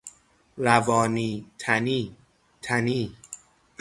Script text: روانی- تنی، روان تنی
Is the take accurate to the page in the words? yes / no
no